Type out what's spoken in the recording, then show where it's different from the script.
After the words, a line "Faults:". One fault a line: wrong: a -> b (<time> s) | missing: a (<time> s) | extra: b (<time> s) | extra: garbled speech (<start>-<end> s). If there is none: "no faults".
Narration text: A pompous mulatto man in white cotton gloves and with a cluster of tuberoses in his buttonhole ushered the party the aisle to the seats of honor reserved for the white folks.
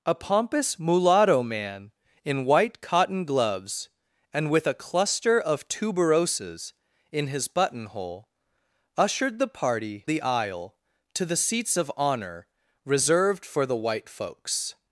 A pompous mulatto man in white cotton gloves and with a cluster of tuberoses in his buttonhole ushered the party the aisle to the seats of honor reserved for the white folks.
Faults:
no faults